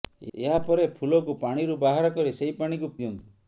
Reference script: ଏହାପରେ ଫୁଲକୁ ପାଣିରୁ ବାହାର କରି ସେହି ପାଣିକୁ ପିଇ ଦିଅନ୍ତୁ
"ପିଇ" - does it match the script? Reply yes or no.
no